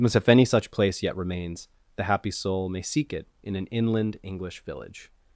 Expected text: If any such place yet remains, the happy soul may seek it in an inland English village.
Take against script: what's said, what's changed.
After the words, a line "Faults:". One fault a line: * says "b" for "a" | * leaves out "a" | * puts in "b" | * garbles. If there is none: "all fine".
as If any such place yet remains, the happy soul may seek it in an inland English village.
Faults:
* puts in "as"